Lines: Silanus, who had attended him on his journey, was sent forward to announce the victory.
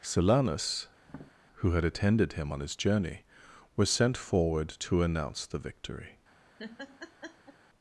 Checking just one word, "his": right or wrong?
right